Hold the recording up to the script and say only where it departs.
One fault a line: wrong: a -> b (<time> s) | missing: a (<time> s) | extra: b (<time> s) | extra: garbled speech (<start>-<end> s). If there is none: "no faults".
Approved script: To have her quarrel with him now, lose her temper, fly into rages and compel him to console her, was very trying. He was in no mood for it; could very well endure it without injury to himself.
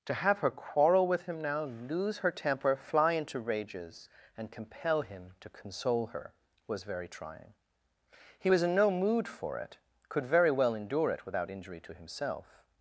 no faults